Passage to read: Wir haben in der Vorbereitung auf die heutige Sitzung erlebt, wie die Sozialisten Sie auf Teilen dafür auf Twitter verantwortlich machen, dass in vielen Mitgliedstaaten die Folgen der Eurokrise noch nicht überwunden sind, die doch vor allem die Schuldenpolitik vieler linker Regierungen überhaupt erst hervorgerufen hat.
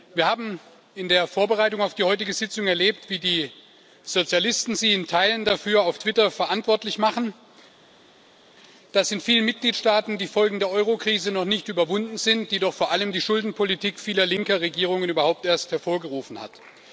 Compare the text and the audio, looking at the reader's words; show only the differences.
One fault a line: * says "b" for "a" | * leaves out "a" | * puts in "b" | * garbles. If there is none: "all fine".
* says "in" for "auf"